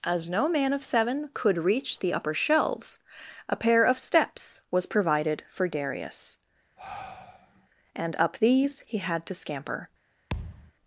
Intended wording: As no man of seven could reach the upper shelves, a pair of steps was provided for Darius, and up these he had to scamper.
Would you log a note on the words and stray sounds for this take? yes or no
yes